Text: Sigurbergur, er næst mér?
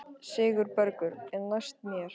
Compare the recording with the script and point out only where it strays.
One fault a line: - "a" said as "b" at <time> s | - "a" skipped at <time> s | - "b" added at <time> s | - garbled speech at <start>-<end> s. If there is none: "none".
none